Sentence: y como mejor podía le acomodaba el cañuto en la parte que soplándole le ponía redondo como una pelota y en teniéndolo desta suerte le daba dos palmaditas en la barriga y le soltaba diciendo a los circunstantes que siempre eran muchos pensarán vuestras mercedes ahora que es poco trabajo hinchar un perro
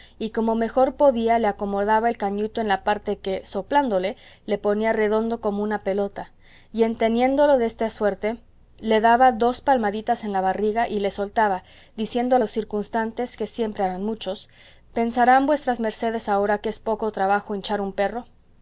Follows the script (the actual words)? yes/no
yes